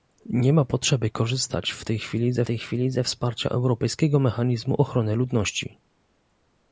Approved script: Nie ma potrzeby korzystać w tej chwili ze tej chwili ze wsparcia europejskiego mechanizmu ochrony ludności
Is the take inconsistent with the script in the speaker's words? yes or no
no